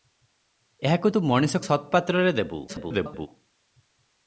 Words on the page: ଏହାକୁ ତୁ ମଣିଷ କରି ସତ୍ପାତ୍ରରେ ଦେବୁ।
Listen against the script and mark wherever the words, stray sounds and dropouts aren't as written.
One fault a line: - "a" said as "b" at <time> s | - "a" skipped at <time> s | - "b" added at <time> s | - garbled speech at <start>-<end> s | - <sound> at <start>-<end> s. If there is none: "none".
- "କରି" skipped at 1.6 s
- garbled speech at 2.7-3.3 s